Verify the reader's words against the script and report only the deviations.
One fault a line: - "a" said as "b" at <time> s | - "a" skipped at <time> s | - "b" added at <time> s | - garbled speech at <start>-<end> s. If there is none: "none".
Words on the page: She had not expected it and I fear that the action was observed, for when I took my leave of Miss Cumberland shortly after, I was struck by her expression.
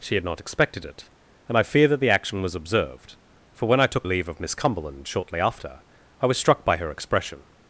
- "my" skipped at 4.1 s